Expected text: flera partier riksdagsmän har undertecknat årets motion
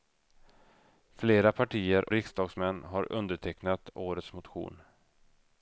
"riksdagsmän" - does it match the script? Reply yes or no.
yes